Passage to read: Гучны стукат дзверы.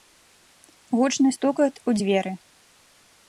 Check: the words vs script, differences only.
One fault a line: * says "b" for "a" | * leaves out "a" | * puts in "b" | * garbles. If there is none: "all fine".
* puts in "у"